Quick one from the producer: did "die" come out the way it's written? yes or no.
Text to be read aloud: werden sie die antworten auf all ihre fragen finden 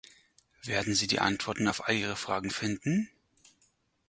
yes